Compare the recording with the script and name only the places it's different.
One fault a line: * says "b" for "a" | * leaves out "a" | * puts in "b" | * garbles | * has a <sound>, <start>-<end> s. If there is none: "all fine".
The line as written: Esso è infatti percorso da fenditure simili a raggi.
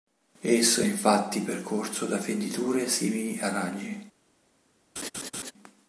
* has a laugh, 5.0-5.5 s